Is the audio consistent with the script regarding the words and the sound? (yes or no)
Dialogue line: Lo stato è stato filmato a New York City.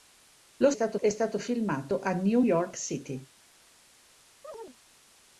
no